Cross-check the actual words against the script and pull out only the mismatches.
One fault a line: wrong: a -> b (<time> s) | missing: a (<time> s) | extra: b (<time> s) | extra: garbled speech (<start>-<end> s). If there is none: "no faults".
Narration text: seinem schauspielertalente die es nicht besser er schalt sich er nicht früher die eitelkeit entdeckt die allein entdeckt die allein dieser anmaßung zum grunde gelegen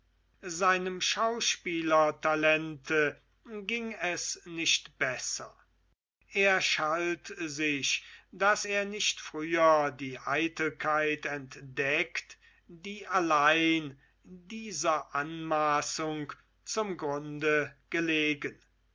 wrong: die -> ging (3.7 s)
extra: daß (8.3 s)
missing: entdeckt die allein (14.0 s)